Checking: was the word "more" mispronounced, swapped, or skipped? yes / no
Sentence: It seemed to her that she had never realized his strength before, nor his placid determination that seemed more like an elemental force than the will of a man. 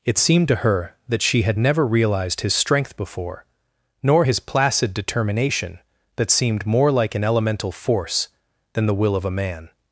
no